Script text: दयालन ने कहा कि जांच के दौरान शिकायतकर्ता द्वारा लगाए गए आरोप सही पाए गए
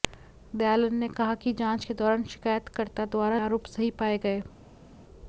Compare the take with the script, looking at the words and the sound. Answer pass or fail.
fail